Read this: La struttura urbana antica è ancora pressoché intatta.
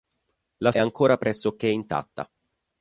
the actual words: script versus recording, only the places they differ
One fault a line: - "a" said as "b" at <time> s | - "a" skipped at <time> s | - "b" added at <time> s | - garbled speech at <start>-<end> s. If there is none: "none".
- "struttura urbana antica" skipped at 0.7 s